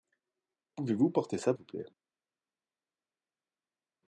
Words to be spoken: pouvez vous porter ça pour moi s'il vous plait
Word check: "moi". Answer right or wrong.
wrong